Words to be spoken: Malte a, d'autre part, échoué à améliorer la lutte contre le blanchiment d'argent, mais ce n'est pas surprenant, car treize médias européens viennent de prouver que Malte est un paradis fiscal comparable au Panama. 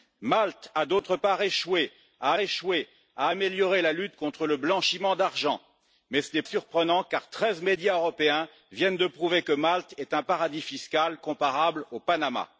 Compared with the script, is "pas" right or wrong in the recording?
wrong